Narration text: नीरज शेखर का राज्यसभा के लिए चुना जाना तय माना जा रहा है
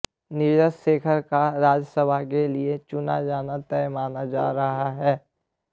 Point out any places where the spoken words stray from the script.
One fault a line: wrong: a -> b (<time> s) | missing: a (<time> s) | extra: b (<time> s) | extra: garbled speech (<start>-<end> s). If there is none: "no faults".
no faults